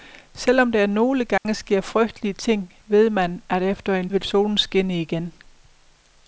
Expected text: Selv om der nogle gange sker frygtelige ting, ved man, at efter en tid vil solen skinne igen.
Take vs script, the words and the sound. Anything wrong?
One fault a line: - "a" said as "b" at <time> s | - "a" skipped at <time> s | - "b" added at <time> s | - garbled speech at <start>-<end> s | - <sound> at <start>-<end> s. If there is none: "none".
- dropout at 1.4-1.5 s
- "tid" skipped at 4.1 s